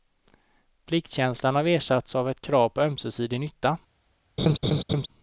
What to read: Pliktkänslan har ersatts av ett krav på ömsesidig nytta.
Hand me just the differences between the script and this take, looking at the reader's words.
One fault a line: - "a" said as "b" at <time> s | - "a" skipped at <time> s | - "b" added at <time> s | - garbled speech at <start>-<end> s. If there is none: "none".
none